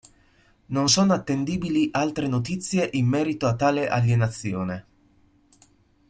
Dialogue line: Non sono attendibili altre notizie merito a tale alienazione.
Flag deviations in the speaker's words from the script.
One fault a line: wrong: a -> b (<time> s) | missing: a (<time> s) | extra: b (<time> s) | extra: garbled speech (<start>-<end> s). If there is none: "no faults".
extra: in (2.9 s)